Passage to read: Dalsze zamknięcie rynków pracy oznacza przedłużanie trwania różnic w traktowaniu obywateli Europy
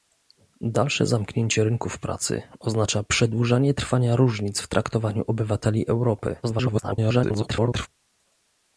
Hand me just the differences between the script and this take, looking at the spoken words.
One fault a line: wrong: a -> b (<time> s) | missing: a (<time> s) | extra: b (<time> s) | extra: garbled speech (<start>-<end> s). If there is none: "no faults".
extra: garbled speech (6.4-7.9 s)